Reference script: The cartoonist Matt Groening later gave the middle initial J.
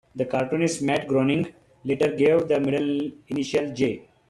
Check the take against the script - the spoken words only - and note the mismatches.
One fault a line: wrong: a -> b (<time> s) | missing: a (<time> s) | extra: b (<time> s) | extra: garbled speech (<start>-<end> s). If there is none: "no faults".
no faults